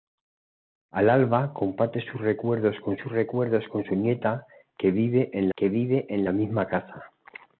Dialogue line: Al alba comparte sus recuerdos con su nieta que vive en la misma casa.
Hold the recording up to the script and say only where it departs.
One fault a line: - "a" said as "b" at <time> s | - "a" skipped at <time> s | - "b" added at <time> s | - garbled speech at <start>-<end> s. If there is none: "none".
- "sus recuerdos con" added at 2.9 s
- "que vive en" added at 5.6 s